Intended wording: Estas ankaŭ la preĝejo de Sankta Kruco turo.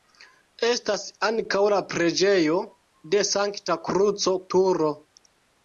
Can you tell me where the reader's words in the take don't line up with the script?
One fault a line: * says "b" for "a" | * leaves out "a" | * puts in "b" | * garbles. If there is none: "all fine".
all fine